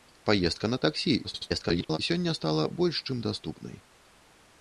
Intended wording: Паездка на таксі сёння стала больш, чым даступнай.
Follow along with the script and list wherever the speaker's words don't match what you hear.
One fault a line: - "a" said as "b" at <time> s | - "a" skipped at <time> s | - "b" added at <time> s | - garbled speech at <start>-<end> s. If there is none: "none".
- garbled speech at 1.2-2.0 s